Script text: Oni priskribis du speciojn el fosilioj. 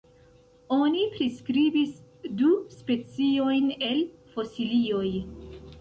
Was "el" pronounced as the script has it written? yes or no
yes